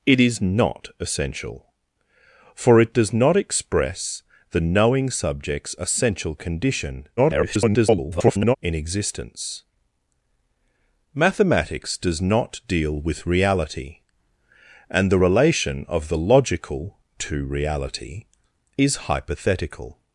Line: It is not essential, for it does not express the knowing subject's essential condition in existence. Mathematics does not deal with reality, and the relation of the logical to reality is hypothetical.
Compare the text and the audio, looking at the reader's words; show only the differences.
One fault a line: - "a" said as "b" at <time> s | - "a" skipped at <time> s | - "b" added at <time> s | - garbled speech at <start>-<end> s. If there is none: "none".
- garbled speech at 7.2-8.6 s